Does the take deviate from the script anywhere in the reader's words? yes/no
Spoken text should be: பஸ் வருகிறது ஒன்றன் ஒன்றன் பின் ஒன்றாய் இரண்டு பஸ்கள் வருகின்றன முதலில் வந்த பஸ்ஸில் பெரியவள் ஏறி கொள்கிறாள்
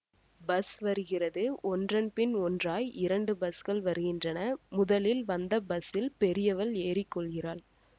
yes